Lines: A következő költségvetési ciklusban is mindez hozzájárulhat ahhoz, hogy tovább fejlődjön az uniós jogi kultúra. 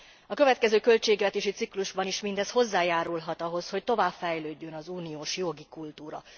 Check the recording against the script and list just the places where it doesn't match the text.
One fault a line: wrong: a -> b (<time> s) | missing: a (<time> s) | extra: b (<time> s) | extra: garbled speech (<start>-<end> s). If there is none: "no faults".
no faults